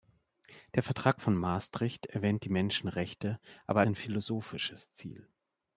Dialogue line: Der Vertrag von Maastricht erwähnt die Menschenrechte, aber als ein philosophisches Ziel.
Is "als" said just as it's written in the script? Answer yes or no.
no